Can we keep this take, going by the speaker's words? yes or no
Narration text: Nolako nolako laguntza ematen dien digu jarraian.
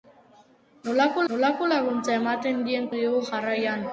yes